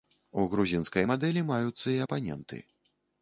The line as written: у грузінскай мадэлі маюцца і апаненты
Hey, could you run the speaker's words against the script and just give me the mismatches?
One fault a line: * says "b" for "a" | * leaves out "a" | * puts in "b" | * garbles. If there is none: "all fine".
all fine